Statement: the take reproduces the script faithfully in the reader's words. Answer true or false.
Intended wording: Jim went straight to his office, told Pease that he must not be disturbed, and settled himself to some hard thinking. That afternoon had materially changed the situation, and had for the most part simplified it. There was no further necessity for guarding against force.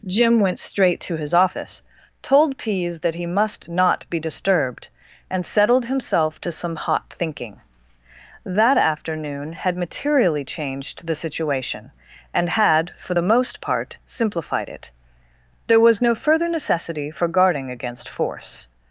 false